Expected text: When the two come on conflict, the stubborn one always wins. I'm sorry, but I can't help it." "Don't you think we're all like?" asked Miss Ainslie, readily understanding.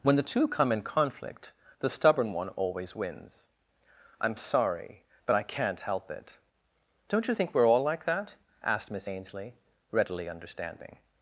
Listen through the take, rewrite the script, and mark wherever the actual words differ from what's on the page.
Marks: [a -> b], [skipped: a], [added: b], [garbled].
When the two come [on -> in] conflict, the stubborn one always wins. I'm sorry, but I can't help it." "Don't you think we're all like?" [added: that] asked Miss Ainslie, readily understanding.